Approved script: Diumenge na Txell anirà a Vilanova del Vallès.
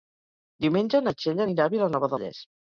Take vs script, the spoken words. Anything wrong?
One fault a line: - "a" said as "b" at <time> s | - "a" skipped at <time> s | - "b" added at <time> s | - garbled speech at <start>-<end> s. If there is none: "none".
- "del" skipped at 2.1 s